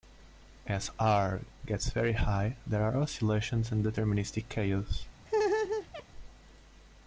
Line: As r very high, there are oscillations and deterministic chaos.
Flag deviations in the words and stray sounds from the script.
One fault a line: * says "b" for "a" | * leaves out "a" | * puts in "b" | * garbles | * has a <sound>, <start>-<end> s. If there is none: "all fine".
* puts in "gets"
* has a laugh, 5.3-6.0 s